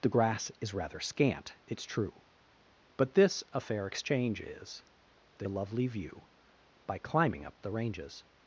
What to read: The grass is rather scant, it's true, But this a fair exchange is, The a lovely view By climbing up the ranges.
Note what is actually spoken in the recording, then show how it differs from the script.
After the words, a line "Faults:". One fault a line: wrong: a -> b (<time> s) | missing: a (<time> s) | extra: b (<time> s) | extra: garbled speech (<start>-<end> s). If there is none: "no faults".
The grass is rather scant, it's true, But this a fair exchange is, The a lovely view By climbing up the ranges.
Faults:
no faults